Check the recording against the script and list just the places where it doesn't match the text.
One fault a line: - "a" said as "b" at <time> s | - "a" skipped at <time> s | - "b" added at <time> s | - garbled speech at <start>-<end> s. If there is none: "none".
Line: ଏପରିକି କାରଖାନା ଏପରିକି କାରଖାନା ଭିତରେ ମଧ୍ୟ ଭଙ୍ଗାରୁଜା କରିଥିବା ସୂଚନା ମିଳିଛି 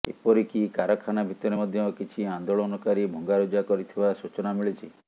- "ଏପରିକି କାରଖାନା ଭିତରେ ମଧ୍ୟ" said as "ଭିତରେ ମଧ୍ୟ କିଛି ଆନ୍ଦୋଳନକାରୀ" at 1.3 s